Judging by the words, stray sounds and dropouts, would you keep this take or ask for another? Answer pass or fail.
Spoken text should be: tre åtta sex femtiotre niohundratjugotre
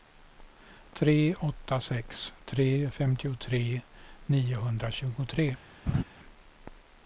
fail